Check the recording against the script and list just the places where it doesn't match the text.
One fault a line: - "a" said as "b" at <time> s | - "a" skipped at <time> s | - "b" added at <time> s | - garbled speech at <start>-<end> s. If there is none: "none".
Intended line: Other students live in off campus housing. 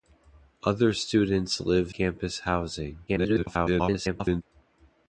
- "in off" skipped at 1.9 s
- garbled speech at 3.1-4.4 s